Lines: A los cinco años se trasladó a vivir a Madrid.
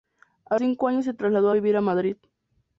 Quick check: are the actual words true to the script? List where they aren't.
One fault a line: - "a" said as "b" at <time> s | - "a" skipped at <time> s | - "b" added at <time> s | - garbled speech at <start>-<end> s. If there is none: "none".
- "los" skipped at 0.6 s